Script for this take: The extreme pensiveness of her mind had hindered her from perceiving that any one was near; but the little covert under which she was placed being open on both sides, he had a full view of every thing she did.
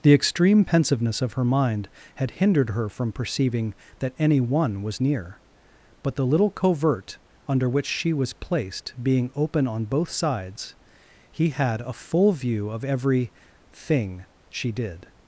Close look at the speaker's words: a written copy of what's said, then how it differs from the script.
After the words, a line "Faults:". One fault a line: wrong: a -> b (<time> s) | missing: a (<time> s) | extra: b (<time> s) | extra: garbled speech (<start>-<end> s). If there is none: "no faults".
The extreme pensiveness of her mind had hindered her from perceiving that any one was near; but the little covert under which she was placed being open on both sides, he had a full view of every thing she did.
Faults:
no faults